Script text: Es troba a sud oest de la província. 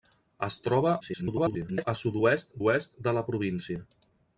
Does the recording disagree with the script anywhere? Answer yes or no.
yes